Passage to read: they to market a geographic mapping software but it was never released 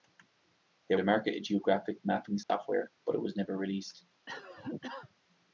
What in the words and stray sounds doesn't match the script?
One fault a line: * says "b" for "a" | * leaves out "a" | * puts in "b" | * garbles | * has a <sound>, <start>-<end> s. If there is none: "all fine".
* has a dropout, 2.4-2.5 s
* has a cough, 4.3-5.1 s